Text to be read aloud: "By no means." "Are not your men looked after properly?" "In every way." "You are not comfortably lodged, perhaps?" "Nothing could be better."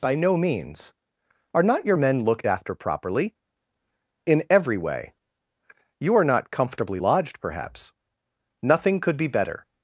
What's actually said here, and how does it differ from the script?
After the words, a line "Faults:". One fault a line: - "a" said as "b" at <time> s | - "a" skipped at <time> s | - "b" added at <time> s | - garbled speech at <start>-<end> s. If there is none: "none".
"By no means." "Are not your men looked after properly?" "In every way." "You are not comfortably lodged, perhaps?" "Nothing could be better."
Faults:
none